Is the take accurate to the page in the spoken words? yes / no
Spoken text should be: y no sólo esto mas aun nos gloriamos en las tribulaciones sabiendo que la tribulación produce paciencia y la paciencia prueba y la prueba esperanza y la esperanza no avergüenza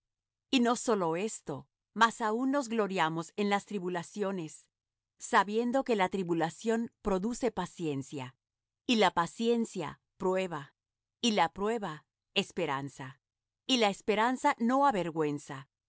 yes